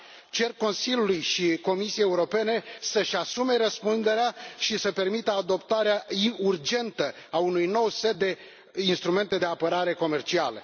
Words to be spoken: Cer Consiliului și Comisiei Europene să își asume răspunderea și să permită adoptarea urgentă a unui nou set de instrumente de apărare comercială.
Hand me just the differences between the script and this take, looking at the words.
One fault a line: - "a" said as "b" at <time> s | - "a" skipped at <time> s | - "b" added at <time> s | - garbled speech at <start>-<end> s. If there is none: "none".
none